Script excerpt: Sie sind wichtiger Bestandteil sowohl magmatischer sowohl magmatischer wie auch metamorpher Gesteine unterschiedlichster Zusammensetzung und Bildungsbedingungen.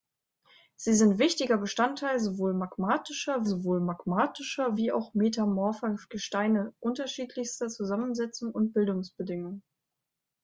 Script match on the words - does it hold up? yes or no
yes